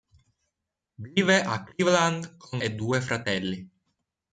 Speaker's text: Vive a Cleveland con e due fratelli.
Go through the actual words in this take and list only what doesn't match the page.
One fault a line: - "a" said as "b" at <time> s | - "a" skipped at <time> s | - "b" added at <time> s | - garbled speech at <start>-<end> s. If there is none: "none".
none